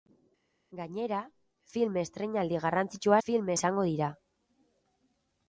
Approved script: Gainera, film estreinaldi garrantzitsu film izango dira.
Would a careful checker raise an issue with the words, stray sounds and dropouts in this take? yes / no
no